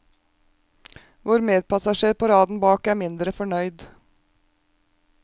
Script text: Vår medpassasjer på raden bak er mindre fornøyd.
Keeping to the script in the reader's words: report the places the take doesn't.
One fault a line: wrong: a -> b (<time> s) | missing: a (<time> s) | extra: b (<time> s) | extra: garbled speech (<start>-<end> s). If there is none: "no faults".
no faults